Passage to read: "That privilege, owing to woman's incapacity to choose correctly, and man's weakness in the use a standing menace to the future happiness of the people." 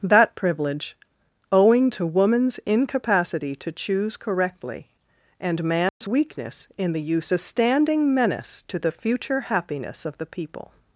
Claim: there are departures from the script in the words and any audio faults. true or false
true